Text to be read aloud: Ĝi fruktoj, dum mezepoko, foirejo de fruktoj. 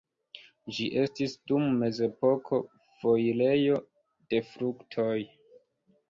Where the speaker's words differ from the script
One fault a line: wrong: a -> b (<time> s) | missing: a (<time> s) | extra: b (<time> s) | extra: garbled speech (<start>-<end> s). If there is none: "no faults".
wrong: fruktoj -> estis (1.0 s)